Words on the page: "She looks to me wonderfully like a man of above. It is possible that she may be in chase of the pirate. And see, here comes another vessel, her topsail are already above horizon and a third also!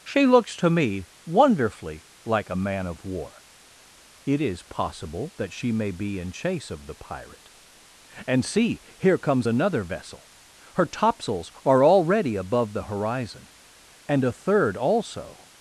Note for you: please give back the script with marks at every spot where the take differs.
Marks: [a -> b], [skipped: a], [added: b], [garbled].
"She looks to me wonderfully like a man of [above. -> war] It is possible that she may be in chase of the pirate. And see, here comes another vessel, her [topsail -> topsails] are already above [added: the] horizon and a third also!